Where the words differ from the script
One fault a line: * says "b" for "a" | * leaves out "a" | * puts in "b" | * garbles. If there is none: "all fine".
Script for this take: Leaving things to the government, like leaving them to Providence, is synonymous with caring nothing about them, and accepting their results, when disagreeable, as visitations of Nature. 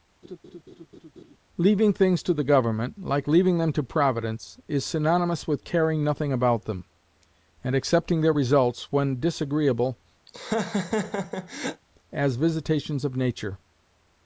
all fine